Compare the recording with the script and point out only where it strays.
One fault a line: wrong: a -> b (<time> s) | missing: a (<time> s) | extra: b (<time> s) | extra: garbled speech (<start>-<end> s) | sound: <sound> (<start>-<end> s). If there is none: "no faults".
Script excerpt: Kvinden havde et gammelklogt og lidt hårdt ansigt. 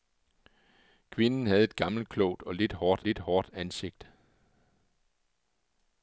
extra: lidt hårdt (3.0 s)